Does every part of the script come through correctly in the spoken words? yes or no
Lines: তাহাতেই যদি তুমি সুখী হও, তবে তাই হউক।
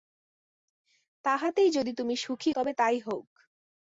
no